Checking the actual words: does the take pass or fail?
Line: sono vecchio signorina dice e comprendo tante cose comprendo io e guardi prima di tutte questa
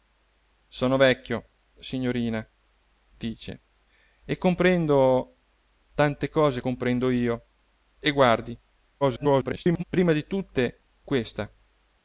fail